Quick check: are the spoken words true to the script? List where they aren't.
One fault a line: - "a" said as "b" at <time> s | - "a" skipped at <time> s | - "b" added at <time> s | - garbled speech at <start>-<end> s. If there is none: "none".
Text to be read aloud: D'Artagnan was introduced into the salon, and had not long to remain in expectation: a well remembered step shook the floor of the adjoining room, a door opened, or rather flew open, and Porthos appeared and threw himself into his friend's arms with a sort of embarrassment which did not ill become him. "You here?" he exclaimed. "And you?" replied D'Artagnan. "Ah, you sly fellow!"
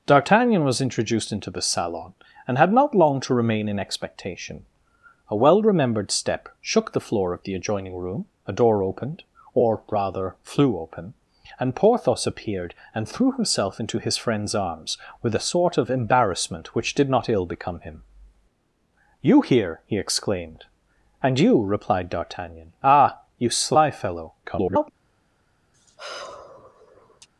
- garbled speech at 24.4-24.9 s